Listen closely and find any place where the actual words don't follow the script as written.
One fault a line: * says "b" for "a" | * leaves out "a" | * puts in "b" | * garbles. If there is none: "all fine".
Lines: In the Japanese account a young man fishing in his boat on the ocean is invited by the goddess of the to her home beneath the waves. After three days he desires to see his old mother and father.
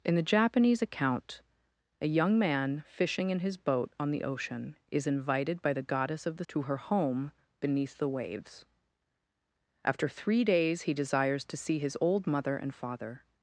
all fine